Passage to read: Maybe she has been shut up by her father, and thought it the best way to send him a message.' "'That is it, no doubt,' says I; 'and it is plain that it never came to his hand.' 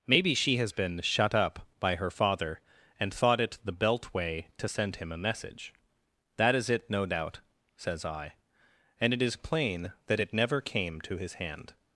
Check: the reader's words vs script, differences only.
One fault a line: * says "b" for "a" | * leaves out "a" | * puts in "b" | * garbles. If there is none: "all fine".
* says "belt" for "best"